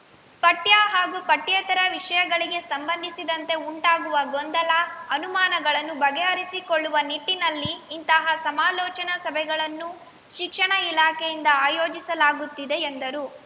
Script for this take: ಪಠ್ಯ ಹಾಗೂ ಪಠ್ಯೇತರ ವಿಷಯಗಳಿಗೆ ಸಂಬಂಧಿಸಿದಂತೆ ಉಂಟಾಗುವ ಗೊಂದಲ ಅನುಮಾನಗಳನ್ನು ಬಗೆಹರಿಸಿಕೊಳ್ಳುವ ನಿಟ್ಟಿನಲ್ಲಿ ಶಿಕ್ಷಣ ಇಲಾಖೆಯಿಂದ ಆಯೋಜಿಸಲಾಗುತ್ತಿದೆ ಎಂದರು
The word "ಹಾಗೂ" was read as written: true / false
true